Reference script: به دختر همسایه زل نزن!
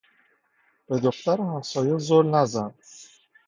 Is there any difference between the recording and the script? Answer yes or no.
no